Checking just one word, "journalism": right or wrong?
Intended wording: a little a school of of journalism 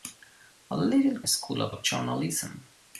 right